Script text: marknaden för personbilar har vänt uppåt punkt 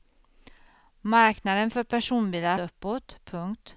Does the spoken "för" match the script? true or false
true